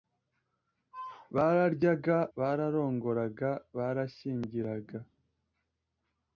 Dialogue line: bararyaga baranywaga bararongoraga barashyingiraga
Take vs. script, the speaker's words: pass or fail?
fail